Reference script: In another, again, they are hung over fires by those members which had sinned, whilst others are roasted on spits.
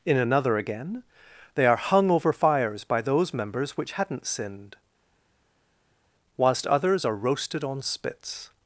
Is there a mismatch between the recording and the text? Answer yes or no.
yes